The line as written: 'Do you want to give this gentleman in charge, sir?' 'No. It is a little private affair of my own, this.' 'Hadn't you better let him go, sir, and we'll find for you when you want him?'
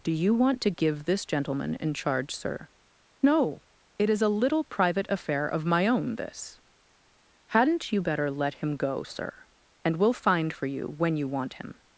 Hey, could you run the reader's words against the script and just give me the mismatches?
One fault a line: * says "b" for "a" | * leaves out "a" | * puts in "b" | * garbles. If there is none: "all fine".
all fine